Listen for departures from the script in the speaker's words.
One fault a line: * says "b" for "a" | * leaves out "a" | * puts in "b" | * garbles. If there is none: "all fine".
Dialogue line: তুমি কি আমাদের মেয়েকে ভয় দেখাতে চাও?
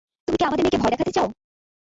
all fine